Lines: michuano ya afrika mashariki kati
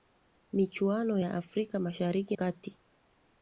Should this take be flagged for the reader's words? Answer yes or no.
no